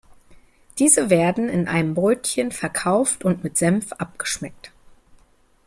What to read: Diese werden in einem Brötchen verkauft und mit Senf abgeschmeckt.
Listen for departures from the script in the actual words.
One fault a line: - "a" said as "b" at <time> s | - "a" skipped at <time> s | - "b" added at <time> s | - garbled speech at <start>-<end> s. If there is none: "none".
none